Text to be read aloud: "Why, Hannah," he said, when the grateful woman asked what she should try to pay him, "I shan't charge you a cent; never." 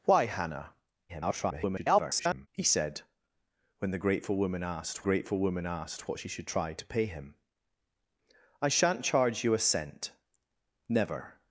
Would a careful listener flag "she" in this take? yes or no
no